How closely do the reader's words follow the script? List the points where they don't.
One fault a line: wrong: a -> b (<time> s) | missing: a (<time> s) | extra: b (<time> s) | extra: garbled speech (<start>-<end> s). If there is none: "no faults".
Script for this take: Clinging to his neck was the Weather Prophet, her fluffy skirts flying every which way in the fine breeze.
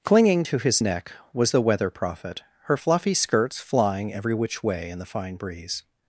no faults